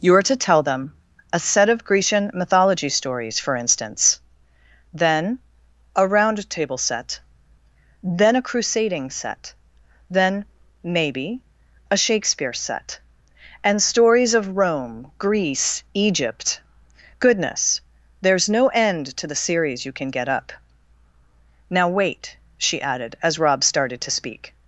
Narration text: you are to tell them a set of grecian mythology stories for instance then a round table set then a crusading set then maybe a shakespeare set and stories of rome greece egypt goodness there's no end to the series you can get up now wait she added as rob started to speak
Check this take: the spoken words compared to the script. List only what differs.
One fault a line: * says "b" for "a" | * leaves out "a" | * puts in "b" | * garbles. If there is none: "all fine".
all fine